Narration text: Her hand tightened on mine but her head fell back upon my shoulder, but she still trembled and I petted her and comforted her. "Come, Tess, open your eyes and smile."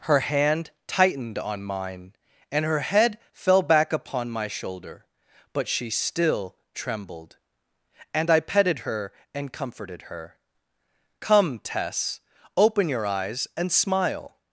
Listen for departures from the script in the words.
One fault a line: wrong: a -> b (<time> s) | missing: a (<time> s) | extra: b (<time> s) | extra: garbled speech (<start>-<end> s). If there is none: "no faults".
wrong: but -> and (2.5 s)